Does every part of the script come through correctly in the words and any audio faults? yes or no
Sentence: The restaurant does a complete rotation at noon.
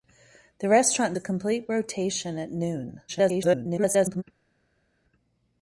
no